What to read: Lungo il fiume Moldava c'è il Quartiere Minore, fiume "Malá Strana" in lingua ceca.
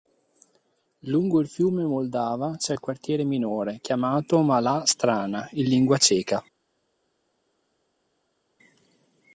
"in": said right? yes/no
yes